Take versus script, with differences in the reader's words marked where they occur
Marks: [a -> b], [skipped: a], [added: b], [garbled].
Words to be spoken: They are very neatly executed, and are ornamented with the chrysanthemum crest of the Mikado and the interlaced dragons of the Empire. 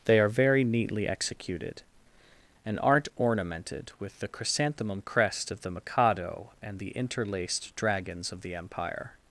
They are very neatly executed, and [are -> aren't] ornamented with the chrysanthemum crest of the Mikado and the interlaced dragons of the Empire.